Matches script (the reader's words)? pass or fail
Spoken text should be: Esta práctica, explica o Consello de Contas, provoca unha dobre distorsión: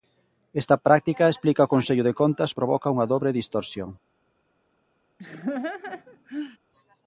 pass